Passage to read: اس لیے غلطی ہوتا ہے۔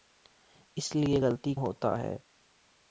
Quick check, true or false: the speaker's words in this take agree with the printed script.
true